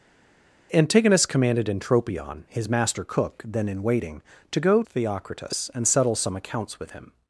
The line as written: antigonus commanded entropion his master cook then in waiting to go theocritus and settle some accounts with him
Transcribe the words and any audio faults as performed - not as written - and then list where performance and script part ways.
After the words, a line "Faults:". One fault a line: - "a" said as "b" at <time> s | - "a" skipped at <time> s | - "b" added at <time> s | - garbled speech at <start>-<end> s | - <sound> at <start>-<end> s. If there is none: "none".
antigonus commanded entropion his master cook then in waiting to go theocritus and settle some accounts with him
Faults:
none